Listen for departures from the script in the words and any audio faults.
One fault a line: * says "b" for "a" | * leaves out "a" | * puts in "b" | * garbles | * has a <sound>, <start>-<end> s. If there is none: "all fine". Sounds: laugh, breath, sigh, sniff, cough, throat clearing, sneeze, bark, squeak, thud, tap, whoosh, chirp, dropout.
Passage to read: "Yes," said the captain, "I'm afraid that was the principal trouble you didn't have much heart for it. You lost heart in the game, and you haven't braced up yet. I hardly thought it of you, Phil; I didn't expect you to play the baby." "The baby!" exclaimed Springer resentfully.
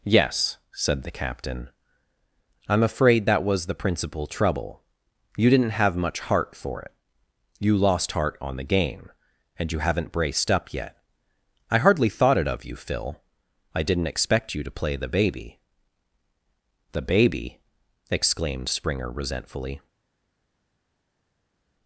* says "on" for "in"